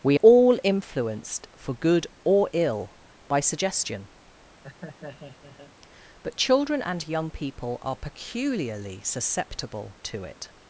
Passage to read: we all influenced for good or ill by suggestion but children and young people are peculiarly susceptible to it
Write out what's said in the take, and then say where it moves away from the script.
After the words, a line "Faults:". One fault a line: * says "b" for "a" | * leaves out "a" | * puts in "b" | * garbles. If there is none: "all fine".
we all influenced for good or ill by suggestion but children and young people are peculiarly susceptible to it
Faults:
all fine